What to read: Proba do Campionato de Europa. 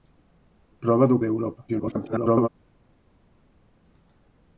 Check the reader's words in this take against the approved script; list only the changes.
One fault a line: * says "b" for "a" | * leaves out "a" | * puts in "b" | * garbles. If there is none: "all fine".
* leaves out "Campionato"
* garbles